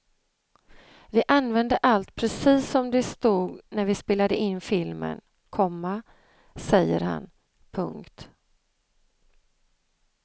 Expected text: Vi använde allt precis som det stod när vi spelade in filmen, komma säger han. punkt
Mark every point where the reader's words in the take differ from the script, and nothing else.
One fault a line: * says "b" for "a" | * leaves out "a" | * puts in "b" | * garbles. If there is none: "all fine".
all fine